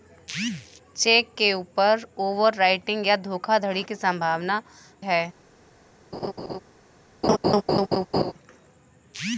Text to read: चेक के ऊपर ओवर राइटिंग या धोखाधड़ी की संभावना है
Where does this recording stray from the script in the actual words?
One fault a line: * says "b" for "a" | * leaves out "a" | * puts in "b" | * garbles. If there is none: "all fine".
all fine